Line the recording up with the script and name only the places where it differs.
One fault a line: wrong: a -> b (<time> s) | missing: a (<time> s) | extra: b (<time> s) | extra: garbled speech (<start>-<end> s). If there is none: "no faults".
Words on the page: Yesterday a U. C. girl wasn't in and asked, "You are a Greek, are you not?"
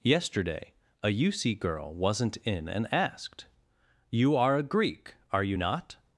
no faults